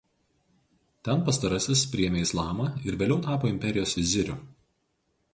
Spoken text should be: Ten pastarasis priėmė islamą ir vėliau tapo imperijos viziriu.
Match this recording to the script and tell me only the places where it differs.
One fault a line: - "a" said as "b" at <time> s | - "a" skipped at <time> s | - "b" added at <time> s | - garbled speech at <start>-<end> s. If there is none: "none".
none